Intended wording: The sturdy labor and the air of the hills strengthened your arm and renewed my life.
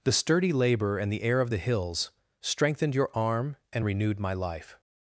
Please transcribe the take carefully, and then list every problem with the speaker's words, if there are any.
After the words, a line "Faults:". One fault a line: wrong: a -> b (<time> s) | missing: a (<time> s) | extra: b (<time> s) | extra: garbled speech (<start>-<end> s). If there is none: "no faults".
The sturdy labor and the air of the hills strengthened your arm and renewed my life.
Faults:
no faults